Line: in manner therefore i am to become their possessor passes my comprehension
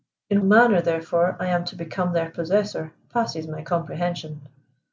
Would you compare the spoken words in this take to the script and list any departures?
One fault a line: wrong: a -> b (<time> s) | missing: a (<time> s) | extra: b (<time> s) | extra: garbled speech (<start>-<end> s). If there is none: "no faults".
no faults